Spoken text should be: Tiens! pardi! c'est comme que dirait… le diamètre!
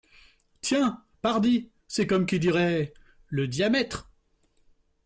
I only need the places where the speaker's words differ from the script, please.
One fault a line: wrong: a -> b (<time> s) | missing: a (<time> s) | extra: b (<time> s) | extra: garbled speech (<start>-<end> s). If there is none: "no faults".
wrong: que -> qui (2.2 s)